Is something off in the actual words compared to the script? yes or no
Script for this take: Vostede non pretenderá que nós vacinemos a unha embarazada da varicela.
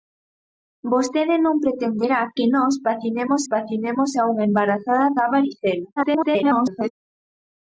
yes